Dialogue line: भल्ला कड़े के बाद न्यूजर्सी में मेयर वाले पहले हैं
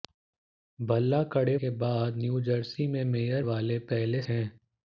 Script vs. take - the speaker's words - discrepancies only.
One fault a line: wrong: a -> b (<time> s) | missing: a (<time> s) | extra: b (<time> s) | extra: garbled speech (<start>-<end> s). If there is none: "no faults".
no faults